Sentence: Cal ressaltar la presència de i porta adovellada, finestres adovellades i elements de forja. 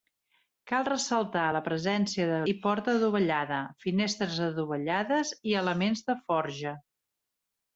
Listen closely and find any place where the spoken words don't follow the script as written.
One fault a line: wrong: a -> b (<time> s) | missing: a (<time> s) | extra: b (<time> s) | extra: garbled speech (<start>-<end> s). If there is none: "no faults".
no faults